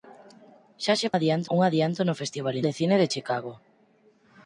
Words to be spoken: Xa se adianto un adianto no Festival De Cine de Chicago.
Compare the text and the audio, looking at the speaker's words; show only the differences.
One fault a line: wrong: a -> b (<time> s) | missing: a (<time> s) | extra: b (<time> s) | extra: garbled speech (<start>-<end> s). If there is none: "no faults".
no faults